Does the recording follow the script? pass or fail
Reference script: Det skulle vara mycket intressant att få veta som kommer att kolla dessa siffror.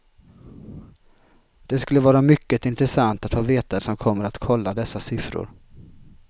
pass